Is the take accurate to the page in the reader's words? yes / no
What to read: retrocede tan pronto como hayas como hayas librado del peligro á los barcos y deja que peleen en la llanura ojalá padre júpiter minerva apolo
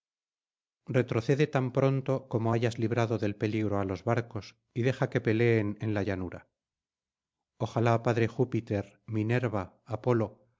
no